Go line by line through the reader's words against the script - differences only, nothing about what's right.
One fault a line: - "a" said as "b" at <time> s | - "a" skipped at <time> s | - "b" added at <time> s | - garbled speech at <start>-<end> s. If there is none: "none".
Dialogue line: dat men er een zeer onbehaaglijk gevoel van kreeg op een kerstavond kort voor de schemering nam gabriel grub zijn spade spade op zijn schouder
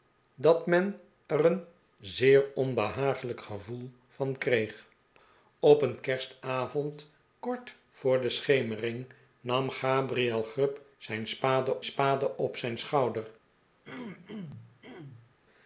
none